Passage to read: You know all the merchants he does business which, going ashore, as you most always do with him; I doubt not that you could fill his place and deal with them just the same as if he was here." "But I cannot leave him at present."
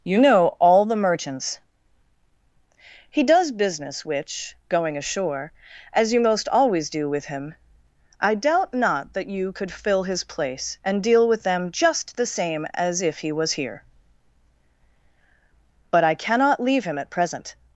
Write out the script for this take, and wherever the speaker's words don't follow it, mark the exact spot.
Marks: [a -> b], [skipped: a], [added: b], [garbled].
You know all the merchants he does business which, going ashore, as you most always do with him; I doubt not that you could fill his place and deal with them just the same as if he was here." "But I cannot leave him at present."